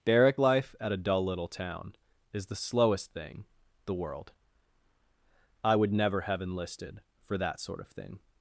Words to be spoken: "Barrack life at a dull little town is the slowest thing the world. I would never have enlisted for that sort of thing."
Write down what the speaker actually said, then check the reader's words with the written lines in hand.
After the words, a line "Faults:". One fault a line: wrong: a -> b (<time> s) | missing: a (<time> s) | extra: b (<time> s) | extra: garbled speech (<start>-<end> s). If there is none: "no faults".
"Barrack life at a dull little town is the slowest thing the world. I would never have enlisted for that sort of thing."
Faults:
no faults